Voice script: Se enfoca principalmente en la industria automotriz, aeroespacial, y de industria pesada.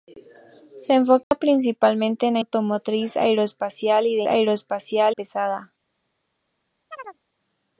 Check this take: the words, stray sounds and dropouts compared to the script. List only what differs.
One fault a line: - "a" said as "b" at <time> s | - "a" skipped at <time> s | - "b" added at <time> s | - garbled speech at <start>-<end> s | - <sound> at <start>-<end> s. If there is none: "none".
- dropout at 1.2-1.3 s
- "industria" skipped at 2.4 s
- "industria" said as "aeroespacial" at 4.3 s
- chirp at 6.9-7.2 s